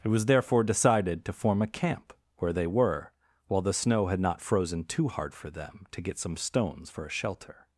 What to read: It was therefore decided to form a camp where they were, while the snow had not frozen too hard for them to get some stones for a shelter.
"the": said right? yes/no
yes